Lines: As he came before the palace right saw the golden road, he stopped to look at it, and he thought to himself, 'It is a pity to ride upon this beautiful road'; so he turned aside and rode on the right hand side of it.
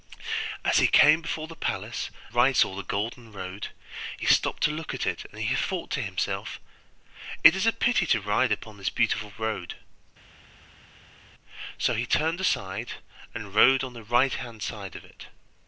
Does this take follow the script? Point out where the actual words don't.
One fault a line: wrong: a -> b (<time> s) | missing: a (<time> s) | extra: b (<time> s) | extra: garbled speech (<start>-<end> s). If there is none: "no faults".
no faults